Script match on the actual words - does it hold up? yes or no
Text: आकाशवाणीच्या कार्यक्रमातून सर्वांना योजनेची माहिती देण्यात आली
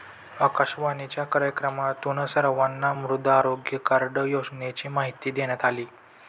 no